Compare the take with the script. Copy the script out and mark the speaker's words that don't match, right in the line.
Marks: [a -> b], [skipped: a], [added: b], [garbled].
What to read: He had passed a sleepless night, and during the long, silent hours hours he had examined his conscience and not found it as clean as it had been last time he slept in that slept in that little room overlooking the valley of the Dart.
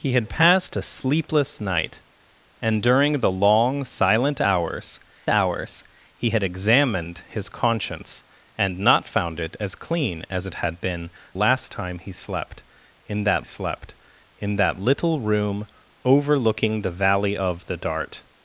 He had passed a sleepless night, and during the long, silent hours hours he had examined his conscience and not found it as clean as it had been last time he slept in that slept in that little room overlooking the valley of the Dart.